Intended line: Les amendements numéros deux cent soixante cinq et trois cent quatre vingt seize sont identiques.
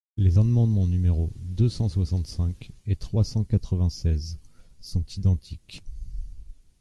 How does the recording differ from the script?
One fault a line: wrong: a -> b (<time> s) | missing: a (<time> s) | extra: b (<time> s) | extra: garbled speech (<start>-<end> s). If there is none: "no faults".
no faults